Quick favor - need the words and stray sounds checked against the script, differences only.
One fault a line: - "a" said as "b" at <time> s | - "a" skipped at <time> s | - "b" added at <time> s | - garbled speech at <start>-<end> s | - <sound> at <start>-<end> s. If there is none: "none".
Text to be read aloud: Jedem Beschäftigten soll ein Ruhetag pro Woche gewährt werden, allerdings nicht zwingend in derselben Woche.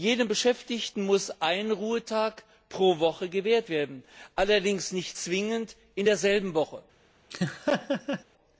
- "soll" said as "muss" at 1.1 s
- laugh at 7.3-8.2 s